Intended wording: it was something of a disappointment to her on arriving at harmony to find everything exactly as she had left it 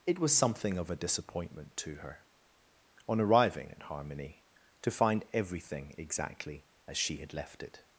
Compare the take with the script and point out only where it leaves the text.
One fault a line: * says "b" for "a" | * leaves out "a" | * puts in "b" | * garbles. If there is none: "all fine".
all fine